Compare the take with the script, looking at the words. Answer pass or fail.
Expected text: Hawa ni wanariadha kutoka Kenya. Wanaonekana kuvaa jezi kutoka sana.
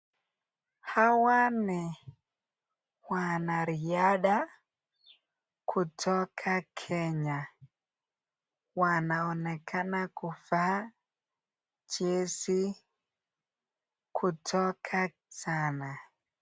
pass